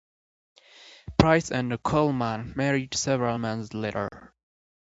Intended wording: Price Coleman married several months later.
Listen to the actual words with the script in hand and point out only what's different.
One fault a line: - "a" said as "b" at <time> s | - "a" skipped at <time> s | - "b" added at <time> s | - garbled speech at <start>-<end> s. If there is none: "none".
- "and" added at 1.5 s